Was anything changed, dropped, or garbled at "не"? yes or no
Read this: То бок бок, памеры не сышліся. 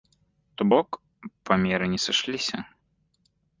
no